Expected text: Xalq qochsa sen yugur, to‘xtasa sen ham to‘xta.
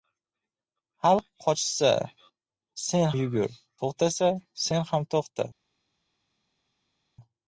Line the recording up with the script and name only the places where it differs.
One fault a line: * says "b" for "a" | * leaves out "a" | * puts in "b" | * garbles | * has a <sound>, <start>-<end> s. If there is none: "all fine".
all fine